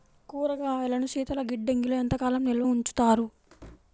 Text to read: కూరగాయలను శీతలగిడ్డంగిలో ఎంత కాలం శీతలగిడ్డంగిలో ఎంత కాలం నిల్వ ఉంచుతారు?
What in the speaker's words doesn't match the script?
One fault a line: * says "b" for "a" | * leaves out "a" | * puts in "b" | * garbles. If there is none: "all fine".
* leaves out "శీతలగిడ్డంగిలో ఎంత కాలం"